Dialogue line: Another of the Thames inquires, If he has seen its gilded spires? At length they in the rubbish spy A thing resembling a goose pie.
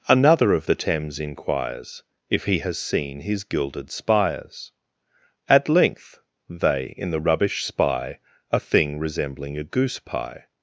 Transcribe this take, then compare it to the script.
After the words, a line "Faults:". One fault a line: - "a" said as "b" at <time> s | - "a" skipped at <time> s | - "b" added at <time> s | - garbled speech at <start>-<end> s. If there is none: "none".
Another of the Thames inquires, If he has seen his gilded spires? At length they in the rubbish spy A thing resembling a goose pie.
Faults:
- "its" said as "his" at 3.2 s